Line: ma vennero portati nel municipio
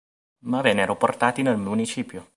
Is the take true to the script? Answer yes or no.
yes